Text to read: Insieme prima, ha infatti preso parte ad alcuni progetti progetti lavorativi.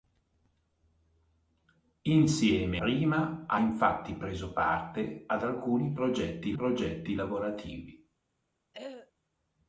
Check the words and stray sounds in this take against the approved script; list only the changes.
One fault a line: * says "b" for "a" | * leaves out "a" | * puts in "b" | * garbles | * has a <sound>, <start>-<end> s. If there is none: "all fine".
* has a throat clearing, 8.7-9.1 s